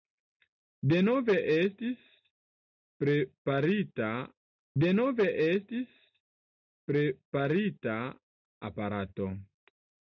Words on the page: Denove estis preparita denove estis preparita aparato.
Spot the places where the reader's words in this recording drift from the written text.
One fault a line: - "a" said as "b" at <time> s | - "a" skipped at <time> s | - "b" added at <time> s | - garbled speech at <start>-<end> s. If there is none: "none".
none